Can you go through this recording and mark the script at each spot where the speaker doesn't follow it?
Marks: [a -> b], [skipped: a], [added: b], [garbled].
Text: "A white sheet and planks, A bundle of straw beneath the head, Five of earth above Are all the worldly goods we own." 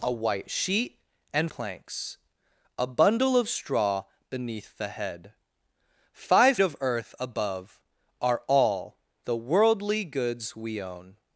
"A white sheet and planks, A bundle of straw beneath the head, Five of earth above Are all the worldly goods we own."